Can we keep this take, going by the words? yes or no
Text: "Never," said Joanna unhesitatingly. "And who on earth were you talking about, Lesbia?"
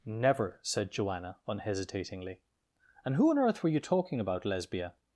yes